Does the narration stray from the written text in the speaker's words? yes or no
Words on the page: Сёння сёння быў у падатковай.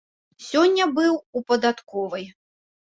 yes